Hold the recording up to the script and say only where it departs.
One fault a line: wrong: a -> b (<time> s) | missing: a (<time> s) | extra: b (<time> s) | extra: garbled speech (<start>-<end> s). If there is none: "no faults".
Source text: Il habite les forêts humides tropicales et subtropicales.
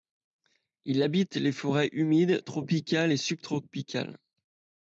no faults